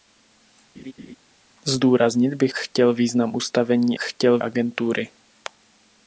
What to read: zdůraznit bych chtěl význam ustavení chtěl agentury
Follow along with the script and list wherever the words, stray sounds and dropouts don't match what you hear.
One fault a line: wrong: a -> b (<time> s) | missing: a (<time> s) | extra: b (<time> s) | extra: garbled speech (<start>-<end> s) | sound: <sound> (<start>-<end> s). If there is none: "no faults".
sound: laugh (0.8-1.2 s)